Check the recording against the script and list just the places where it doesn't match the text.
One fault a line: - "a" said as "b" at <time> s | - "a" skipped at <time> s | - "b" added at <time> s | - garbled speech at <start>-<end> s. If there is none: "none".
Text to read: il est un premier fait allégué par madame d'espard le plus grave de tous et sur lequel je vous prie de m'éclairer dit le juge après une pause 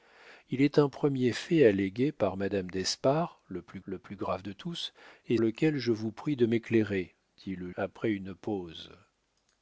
- "le plus" added at 3.8 s
- "sur" skipped at 5.4 s
- "juge" skipped at 7.7 s